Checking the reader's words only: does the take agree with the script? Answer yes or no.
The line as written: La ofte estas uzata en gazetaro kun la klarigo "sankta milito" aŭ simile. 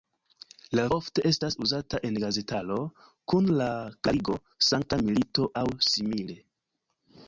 yes